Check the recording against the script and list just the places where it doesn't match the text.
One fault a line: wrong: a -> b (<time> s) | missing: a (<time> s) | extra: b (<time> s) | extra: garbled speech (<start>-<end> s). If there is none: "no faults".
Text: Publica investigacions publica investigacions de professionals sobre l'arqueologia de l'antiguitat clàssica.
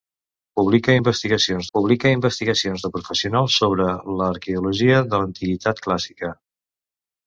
no faults